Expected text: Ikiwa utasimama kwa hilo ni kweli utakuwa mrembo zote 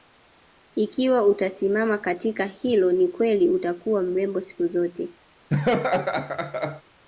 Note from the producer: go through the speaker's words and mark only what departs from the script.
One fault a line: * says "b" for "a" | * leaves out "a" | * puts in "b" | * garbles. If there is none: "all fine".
* says "katika" for "kwa"
* puts in "siku"